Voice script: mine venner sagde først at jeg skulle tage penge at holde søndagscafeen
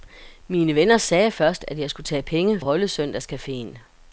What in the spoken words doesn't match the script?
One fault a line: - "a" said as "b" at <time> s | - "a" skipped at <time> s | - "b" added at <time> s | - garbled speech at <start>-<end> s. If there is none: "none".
none